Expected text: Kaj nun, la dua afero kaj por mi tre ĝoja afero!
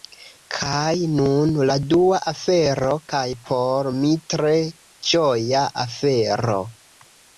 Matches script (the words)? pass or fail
pass